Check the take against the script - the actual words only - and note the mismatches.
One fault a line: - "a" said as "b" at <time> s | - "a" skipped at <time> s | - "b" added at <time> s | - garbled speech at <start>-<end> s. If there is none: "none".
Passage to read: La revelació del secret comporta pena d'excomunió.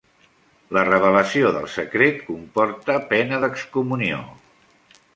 none